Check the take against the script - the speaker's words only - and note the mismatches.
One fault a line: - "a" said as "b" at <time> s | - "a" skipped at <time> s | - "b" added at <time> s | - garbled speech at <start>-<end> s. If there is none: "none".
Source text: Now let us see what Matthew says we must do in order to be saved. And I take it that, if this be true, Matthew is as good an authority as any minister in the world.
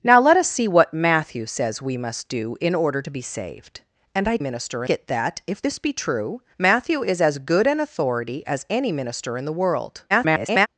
- "take" said as "minister" at 4.4 s
- garbled speech at 10.1-10.7 s